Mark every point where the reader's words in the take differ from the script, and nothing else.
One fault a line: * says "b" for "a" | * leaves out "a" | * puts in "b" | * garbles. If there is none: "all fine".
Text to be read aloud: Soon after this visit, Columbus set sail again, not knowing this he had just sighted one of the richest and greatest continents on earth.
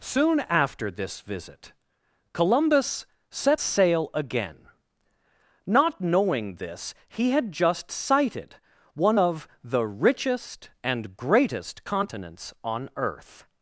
all fine